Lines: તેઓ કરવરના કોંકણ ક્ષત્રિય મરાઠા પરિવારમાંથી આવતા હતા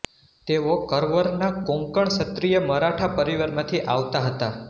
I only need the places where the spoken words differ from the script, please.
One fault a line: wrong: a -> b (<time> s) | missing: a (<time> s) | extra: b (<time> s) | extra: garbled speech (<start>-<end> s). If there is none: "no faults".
no faults